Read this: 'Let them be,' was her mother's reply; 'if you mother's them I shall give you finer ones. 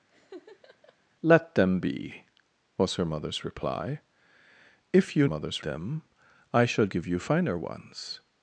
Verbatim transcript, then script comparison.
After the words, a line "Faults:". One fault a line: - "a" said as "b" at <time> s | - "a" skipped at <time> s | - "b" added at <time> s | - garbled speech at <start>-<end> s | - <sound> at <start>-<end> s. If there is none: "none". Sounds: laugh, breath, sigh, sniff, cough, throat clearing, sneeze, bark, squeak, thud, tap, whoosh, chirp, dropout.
'Let them be,' was her mother's reply; 'if you mother's them I shall give you finer ones.
Faults:
- laugh at 0.1-1.0 s